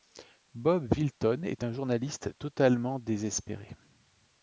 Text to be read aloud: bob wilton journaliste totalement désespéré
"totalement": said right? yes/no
yes